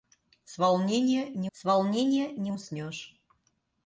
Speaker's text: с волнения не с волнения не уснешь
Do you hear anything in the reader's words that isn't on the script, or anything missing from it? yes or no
no